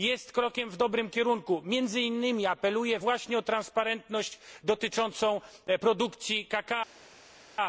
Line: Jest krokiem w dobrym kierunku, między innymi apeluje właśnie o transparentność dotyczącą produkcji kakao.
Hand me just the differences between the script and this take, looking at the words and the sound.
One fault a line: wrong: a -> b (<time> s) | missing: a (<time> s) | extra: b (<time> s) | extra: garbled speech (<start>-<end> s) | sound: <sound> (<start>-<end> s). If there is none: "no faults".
no faults